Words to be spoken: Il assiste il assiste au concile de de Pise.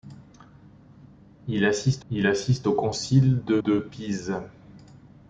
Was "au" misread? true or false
false